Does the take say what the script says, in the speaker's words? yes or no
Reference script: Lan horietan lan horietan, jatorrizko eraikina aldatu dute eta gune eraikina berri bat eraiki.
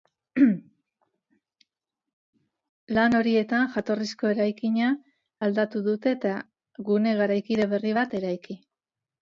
no